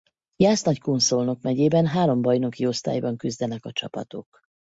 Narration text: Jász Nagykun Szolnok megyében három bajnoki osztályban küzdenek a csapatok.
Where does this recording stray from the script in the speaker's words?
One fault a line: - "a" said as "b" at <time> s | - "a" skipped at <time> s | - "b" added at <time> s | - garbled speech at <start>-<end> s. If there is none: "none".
none